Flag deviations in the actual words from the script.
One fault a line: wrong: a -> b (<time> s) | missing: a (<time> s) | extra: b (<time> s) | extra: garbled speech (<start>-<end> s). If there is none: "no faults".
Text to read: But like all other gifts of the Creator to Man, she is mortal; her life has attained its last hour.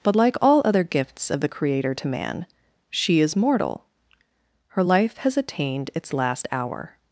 no faults